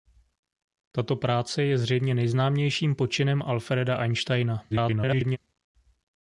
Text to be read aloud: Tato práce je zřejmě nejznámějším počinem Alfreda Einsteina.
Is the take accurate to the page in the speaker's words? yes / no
no